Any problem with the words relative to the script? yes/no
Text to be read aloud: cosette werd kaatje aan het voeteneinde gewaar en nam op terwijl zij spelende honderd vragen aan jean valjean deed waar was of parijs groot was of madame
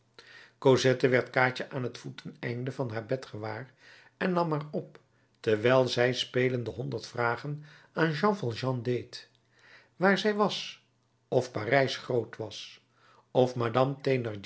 yes